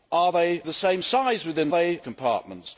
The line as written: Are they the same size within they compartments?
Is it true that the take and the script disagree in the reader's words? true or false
false